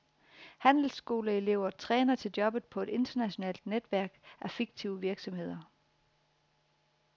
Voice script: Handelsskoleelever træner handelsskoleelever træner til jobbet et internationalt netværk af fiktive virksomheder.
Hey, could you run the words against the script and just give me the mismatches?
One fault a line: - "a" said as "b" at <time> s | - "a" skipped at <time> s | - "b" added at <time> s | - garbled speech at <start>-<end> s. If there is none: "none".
- "handelsskoleelever træner" skipped at 2.1 s
- "på" added at 2.6 s